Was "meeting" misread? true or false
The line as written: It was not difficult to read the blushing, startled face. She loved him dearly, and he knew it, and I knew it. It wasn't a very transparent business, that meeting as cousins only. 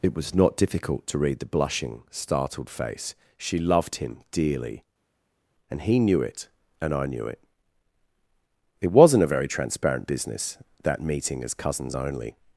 false